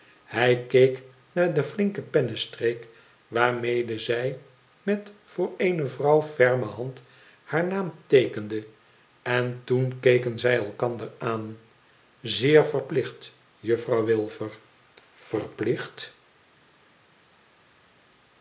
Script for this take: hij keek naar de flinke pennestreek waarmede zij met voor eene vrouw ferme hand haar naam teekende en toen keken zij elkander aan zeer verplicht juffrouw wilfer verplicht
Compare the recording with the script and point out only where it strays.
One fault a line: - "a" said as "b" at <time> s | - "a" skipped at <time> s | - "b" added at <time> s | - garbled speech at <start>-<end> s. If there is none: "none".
none